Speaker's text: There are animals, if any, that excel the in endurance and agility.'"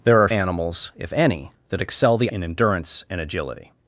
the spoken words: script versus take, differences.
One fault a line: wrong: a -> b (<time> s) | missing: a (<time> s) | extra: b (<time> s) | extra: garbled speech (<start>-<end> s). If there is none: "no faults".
no faults